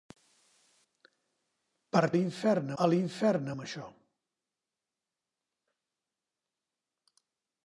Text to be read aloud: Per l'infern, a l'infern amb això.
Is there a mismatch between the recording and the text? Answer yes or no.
no